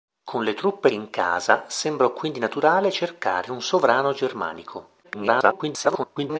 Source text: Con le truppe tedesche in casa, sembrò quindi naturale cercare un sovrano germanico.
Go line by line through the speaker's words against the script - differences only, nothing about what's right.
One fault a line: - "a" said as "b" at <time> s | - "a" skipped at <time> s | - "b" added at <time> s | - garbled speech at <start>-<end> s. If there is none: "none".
- "tedesche" skipped at 0.9 s
- garbled speech at 5.0-6.4 s